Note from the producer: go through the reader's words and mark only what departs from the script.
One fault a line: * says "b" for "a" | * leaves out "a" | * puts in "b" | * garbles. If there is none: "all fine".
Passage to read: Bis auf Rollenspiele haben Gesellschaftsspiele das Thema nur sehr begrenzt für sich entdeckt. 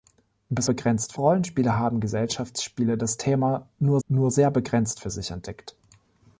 * says "begrenzt" for "auf"
* puts in "nur"